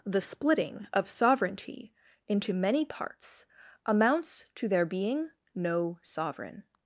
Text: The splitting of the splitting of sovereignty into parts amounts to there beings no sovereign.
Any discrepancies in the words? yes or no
yes